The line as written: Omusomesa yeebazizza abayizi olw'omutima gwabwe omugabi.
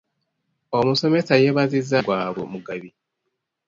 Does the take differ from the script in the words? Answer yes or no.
yes